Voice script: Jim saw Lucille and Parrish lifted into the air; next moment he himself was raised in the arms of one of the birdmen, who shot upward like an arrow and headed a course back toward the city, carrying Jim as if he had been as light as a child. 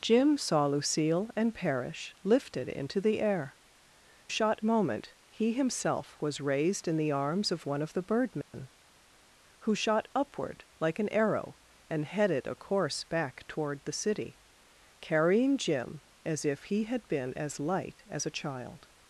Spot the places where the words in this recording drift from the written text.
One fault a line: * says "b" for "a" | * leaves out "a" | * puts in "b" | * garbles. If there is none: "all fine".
* says "shot" for "next"